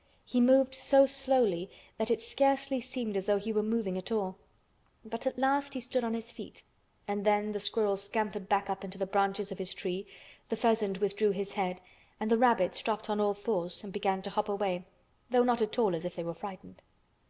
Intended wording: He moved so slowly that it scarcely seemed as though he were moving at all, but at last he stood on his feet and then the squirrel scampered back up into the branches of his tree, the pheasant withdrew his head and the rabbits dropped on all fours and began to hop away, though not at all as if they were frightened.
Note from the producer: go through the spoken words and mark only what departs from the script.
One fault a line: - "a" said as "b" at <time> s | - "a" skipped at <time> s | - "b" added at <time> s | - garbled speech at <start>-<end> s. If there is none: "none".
none